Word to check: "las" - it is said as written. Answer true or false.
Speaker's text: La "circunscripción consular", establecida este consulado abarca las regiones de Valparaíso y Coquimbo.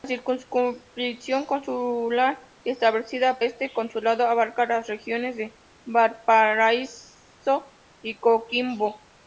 true